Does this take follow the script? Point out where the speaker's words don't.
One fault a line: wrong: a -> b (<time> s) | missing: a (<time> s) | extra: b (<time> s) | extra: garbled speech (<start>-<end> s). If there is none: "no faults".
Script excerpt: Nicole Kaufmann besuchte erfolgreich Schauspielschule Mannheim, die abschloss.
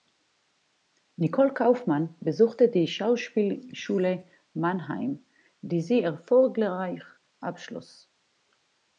wrong: erfolgreich -> die (2.7 s)
extra: sie erfolgreich (5.8 s)